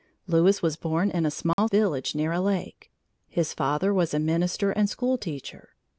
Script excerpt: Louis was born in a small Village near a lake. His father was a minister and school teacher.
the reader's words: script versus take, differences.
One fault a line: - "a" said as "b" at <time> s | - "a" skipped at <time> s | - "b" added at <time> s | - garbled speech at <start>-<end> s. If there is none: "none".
none